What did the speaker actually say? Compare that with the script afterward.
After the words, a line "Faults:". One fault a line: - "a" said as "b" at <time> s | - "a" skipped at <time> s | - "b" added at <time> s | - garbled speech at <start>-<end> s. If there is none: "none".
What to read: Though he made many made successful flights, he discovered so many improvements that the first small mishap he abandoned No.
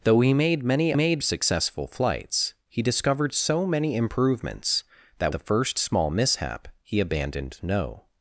Though he made many made successful flights, he discovered so many improvements that the first small mishap he abandoned No.
Faults:
none